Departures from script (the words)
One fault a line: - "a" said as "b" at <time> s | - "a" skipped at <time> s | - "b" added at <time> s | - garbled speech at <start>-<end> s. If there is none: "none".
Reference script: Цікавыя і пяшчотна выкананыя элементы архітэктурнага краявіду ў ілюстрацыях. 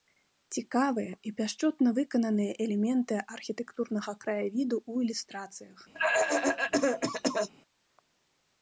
none